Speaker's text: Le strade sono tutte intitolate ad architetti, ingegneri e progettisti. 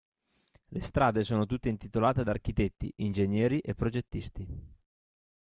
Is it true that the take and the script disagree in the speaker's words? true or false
false